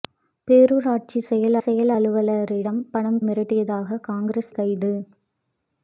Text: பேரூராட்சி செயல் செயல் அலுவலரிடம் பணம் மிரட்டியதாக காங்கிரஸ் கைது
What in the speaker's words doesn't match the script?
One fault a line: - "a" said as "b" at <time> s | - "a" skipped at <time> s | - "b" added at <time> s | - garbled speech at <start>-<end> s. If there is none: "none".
none